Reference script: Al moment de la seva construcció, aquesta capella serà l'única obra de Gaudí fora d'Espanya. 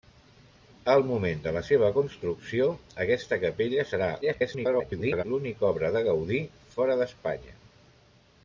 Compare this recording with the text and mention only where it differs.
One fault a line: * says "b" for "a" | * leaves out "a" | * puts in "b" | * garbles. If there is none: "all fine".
* garbles